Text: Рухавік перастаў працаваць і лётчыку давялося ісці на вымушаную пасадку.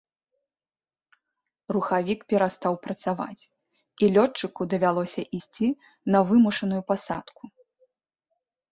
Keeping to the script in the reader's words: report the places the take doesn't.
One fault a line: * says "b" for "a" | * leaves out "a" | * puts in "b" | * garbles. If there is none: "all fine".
all fine